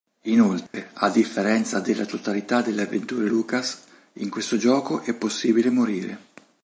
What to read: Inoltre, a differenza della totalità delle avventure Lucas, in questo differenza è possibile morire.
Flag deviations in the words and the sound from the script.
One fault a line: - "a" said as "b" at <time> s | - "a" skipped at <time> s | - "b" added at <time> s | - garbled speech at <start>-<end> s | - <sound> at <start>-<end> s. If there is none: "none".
- dropout at 0.7-0.7 s
- "differenza" said as "gioco" at 4.6 s